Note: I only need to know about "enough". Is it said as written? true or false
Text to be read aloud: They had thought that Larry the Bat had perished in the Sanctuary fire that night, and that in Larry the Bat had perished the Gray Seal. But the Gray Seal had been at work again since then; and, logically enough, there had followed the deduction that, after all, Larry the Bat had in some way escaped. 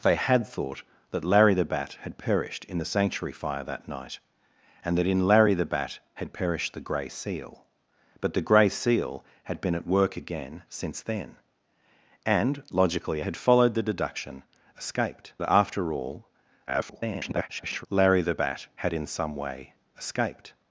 false